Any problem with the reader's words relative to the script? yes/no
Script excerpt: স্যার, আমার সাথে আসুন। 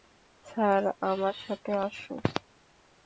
no